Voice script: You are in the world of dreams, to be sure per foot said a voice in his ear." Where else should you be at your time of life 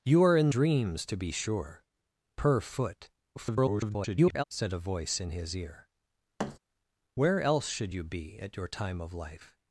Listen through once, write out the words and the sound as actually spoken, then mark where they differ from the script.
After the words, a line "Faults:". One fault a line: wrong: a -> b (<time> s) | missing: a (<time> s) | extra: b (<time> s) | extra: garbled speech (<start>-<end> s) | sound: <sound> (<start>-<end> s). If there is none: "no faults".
You are in dreams, to be sure per foot [garbled] said a voice in his ear." Where else should you be at your time of life
Faults:
missing: the world of (0.5 s)
extra: garbled speech (3.4-4.4 s)
sound: thud (6.4-6.6 s)